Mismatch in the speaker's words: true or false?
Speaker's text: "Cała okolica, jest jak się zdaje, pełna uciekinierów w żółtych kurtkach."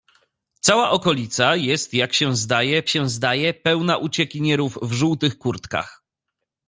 true